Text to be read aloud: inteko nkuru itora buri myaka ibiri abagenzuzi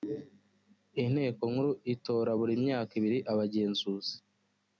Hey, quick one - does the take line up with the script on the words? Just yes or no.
yes